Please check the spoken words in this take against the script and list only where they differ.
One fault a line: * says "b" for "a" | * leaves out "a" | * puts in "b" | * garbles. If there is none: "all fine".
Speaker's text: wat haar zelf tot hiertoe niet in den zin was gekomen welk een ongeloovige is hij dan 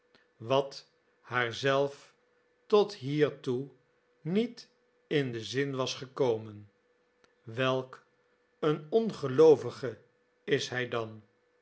all fine